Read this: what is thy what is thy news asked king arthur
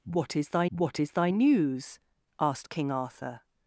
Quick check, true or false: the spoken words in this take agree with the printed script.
true